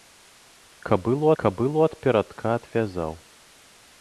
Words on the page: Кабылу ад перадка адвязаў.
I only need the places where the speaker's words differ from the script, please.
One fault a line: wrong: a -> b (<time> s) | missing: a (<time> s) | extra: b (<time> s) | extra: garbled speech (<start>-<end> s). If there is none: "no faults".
extra: кабылу (1.4 s)